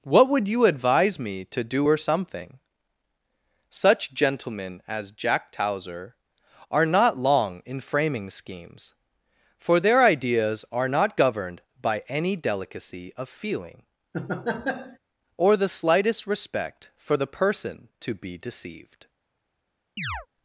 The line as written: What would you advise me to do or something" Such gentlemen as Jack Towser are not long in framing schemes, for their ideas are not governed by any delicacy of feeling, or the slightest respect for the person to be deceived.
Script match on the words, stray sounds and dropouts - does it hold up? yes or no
no